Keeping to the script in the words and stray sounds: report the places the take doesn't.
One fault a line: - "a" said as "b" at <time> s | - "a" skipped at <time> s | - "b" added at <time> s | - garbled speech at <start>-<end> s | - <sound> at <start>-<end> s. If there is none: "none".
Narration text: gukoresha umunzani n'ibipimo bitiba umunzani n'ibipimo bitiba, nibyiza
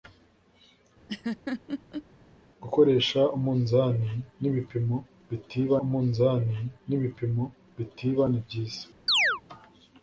- laugh at 1.1-2.1 s
- chirp at 9.1-9.4 s